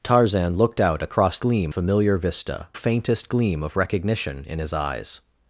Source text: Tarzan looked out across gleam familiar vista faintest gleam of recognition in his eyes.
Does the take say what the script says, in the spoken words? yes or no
yes